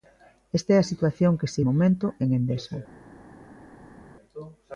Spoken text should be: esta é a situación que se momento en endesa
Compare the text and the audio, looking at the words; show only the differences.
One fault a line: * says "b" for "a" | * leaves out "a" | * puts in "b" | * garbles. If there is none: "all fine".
all fine